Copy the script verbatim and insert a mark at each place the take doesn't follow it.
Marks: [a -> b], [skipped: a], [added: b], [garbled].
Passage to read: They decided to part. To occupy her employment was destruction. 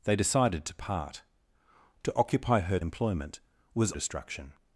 They decided to part. To occupy her employment was destruction.